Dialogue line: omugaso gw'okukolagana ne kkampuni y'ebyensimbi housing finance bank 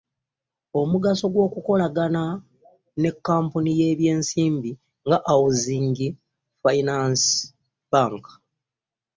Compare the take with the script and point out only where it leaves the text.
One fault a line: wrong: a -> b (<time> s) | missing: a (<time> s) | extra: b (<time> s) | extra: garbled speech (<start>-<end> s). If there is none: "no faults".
extra: nga (5.0 s)